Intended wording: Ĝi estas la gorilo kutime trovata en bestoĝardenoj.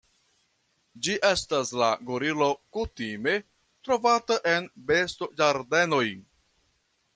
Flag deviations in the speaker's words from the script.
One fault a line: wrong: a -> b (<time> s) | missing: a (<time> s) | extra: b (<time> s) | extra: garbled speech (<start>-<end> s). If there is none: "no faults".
no faults